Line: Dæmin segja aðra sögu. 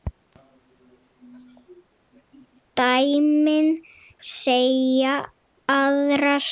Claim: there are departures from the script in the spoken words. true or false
false